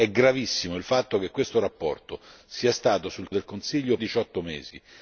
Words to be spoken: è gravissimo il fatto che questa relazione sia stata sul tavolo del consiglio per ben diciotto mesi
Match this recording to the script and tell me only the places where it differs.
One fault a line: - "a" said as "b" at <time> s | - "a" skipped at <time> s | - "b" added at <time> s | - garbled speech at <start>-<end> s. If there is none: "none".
- "tavolo" skipped at 3.3 s
- "per ben" skipped at 4.0 s